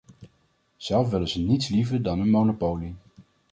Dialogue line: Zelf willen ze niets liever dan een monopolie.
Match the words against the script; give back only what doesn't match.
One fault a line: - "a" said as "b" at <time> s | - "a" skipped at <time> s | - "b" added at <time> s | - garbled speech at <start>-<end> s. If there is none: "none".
none